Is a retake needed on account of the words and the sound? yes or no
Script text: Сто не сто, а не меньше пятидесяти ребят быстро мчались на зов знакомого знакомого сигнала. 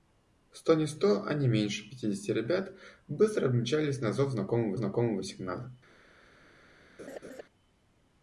yes